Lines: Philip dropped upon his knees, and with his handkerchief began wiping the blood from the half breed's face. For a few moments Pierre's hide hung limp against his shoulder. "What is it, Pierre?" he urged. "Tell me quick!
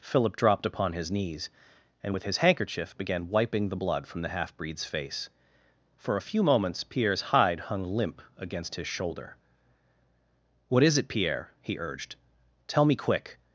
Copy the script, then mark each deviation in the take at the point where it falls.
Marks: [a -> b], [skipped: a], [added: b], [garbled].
Philip dropped upon his knees, and with his handkerchief began wiping the blood from the half breed's face. For a few moments Pierre's hide hung limp against his shoulder. "What is it, Pierre?" he urged. "Tell me quick!